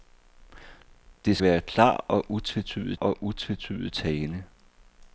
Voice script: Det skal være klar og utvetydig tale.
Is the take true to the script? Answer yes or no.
no